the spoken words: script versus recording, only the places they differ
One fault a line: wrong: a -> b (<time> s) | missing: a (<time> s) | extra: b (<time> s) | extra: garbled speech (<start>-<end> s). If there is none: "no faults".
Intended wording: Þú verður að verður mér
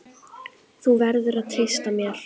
wrong: verður -> treysta (1.6 s)